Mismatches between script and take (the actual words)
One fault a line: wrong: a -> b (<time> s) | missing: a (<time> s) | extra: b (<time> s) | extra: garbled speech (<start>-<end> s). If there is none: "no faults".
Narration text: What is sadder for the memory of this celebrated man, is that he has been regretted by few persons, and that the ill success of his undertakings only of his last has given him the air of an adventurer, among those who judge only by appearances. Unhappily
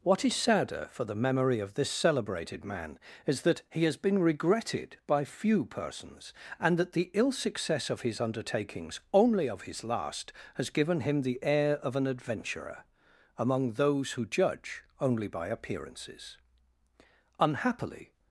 no faults